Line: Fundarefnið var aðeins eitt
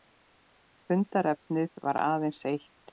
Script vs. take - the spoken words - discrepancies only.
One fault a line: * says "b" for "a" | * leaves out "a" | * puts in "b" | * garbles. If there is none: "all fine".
all fine